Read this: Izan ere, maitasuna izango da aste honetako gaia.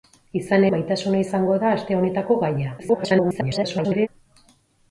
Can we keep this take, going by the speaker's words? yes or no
no